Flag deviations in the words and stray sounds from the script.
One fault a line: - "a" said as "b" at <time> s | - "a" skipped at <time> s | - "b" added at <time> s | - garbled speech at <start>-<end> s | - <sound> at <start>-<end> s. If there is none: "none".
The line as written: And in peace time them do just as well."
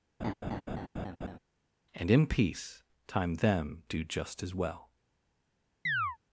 - laugh at 0.2-1.4 s
- chirp at 5.9-6.2 s